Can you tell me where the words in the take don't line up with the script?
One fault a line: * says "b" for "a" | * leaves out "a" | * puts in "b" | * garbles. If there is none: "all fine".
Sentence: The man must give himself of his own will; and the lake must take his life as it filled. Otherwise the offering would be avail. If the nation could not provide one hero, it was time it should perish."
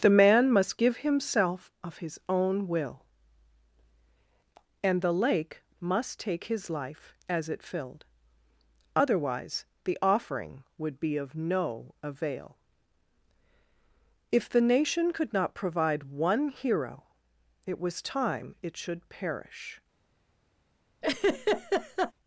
* puts in "of no"